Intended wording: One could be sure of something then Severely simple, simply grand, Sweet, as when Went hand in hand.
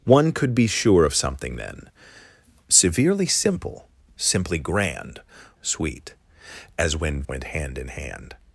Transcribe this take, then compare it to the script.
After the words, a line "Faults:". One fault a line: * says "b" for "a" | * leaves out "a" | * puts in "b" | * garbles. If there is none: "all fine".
One could be sure of something then Severely simple, simply grand, Sweet, as when Went hand in hand.
Faults:
all fine